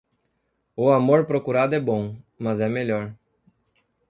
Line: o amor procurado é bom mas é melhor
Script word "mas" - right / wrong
right